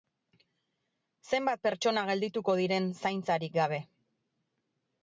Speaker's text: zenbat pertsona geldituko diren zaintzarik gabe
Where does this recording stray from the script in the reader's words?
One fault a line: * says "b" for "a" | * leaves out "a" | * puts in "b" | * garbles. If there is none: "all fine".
all fine